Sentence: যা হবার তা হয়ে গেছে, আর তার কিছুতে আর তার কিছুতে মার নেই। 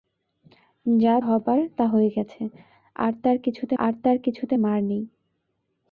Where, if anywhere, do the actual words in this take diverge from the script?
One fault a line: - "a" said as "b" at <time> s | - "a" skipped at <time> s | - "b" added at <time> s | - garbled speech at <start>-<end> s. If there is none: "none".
none